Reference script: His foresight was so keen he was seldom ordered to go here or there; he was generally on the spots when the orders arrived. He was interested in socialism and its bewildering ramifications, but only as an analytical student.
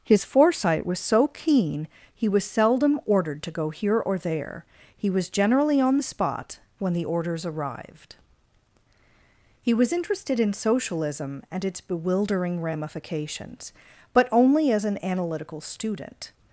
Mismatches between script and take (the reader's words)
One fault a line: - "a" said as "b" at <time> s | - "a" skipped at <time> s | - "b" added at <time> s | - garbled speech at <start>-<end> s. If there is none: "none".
- "spots" said as "spot" at 6.0 s